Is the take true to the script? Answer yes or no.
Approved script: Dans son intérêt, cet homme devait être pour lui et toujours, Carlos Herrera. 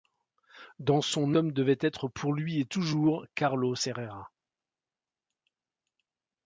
no